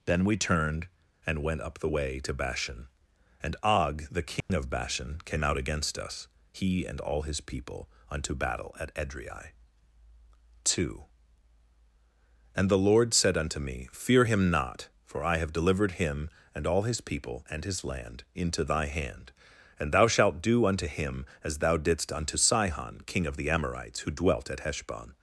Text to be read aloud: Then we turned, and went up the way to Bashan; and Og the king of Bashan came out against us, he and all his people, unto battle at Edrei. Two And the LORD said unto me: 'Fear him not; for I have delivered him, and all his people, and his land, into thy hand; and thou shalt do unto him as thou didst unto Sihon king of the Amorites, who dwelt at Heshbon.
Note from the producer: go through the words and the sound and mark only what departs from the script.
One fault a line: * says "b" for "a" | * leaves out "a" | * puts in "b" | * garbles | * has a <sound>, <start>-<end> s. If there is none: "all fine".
* has a dropout, 4.4-4.5 s